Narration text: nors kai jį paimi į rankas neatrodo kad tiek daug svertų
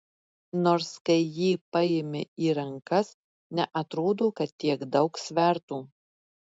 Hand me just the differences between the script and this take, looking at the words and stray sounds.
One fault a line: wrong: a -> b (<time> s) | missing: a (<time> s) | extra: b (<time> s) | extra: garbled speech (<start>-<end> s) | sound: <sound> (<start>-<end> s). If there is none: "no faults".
no faults